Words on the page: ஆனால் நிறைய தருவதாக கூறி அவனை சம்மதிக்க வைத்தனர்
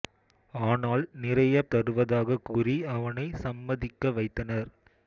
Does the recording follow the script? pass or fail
pass